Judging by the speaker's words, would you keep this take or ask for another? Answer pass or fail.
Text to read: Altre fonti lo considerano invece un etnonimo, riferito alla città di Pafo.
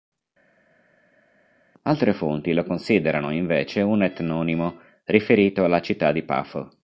pass